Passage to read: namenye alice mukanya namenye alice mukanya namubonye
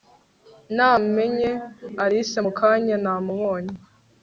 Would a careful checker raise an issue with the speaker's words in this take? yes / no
yes